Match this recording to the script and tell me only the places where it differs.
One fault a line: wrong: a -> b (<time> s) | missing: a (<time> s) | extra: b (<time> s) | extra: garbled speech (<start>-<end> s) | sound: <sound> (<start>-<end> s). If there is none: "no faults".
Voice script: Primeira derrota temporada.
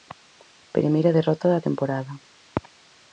extra: da (1.5 s)